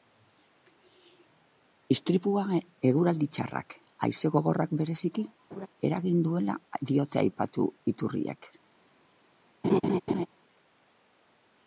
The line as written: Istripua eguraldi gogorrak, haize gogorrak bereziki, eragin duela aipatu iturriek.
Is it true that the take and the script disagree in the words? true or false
true